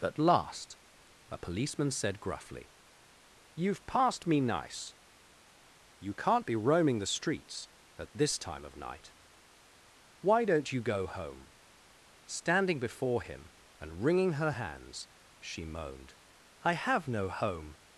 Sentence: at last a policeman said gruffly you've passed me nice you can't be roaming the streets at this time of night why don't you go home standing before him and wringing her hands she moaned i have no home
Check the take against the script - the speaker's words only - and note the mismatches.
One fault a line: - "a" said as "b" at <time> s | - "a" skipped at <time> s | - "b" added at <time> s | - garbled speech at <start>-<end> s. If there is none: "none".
none